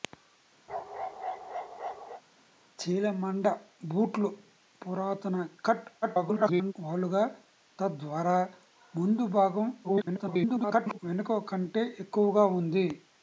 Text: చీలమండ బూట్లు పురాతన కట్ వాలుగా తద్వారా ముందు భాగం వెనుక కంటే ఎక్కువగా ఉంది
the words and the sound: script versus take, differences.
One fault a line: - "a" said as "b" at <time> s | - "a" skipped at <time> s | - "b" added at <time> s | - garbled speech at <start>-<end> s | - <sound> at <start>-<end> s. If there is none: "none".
- bark at 0.7-2.2 s
- garbled speech at 6.0-6.7 s
- garbled speech at 9.8-11.0 s